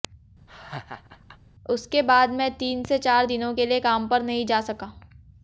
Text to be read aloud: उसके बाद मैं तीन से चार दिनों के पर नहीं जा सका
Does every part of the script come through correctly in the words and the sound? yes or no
no